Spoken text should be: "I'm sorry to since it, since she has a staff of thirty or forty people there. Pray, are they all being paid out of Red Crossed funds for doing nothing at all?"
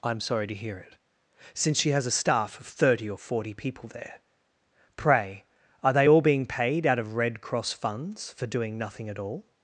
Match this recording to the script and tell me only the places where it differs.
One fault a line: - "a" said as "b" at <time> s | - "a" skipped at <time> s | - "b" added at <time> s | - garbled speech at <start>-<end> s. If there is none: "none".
- "since" said as "hear" at 0.6 s
- "Crossed" said as "Cross" at 7.4 s